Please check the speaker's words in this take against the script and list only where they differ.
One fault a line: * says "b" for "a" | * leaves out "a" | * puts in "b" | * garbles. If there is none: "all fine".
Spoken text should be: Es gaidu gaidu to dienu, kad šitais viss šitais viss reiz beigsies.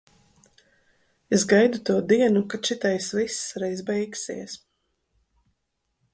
* leaves out "gaidu"
* leaves out "šitais viss"